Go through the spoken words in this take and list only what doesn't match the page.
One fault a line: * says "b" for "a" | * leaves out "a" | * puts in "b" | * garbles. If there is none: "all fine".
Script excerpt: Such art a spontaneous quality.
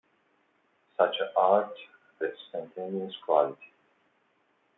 all fine